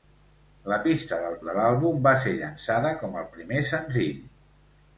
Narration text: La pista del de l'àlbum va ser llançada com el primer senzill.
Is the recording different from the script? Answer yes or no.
no